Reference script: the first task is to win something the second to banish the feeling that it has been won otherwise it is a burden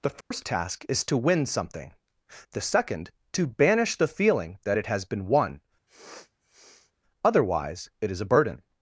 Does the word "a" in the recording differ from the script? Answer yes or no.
no